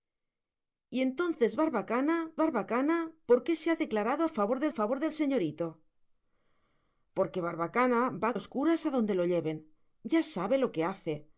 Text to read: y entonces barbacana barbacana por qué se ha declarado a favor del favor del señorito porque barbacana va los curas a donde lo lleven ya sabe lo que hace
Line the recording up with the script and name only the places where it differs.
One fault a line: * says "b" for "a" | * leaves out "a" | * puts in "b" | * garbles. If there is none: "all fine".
all fine